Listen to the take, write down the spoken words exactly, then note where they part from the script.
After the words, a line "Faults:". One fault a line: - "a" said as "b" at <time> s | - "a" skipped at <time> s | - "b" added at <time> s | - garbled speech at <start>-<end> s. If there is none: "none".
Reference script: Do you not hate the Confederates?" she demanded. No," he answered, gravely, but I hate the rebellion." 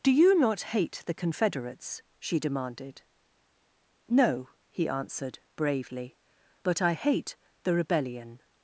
Do you not hate the Confederates?" she demanded. No," he answered, bravely, but I hate the rebellion."
Faults:
- "gravely" said as "bravely" at 5.6 s